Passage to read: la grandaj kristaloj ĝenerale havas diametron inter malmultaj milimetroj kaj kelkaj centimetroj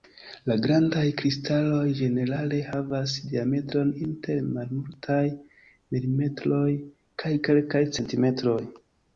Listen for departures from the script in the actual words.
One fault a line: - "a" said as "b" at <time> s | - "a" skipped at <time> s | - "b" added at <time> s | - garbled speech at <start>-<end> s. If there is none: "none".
none